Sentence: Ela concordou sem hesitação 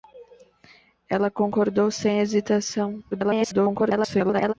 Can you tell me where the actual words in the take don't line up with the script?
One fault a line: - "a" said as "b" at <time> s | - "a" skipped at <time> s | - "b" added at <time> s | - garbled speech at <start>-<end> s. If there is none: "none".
- garbled speech at 3.1-4.5 s